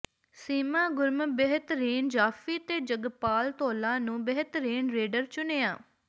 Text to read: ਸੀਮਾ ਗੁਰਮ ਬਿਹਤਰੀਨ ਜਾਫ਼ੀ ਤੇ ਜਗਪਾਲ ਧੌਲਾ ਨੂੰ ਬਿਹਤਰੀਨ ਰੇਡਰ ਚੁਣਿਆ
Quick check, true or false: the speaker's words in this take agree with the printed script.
true